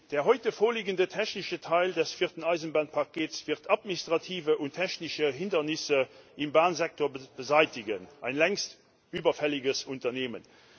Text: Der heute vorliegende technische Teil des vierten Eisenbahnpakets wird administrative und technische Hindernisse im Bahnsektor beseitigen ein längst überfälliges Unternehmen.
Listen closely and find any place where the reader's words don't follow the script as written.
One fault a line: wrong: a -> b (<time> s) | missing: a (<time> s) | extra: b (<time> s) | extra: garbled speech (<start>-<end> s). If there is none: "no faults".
no faults